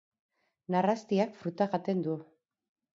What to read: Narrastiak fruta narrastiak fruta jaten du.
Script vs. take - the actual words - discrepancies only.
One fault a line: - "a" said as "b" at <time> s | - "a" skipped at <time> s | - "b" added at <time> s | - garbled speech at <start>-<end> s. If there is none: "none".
- "narrastiak fruta" skipped at 1.7 s